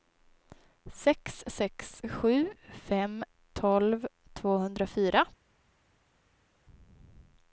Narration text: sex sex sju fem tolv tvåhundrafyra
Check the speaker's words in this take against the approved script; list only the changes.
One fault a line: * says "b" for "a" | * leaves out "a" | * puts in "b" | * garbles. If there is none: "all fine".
all fine